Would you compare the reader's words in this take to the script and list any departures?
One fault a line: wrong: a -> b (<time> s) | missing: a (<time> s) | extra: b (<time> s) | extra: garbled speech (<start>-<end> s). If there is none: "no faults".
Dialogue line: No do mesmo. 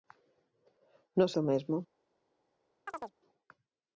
no faults